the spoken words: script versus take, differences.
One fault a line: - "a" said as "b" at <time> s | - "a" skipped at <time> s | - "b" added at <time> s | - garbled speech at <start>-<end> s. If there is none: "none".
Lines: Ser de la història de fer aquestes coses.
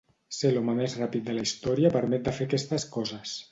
- "l'home més ràpid" added at 0.5 s
- "permet" added at 2.0 s